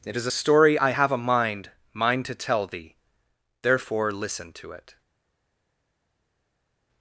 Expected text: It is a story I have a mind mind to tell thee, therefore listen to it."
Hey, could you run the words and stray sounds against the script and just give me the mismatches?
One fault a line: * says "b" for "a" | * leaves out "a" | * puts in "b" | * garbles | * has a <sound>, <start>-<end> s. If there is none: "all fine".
all fine